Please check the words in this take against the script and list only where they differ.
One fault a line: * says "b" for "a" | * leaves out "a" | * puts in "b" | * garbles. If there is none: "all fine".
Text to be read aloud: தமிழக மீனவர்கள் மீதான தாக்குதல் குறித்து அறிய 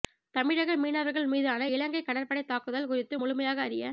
* puts in "இலங்கை கடற்படை"
* puts in "முழுமையாக"